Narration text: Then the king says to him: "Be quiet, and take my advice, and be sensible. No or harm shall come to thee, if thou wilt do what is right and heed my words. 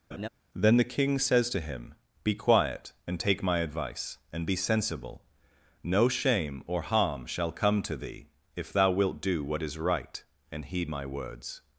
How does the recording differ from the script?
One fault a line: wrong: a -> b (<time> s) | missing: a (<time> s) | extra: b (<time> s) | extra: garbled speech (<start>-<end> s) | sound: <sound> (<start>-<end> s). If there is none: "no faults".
sound: laugh (0.1-0.3 s)
extra: shame (6.1 s)